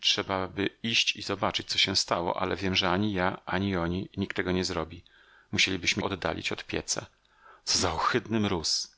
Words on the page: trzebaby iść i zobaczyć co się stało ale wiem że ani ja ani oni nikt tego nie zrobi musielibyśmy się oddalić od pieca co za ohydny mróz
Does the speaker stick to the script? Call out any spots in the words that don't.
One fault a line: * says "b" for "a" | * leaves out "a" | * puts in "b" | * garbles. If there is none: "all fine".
* leaves out "się"